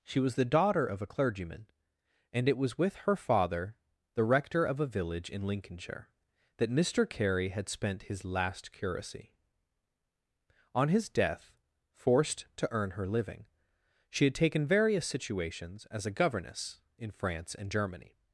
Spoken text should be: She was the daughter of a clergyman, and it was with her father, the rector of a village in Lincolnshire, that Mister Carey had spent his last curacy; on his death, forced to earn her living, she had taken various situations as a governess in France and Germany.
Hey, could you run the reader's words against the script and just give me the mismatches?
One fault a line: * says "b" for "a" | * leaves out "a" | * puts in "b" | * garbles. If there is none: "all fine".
all fine